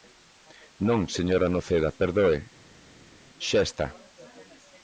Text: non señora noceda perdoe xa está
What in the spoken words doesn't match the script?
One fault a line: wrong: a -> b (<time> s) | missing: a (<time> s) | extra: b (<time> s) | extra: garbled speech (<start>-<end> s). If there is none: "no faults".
no faults